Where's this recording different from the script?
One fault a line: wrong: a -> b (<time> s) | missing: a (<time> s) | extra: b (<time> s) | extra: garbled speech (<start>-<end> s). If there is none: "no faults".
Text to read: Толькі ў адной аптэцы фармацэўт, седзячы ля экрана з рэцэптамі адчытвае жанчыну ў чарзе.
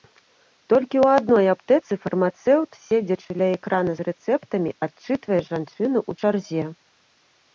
no faults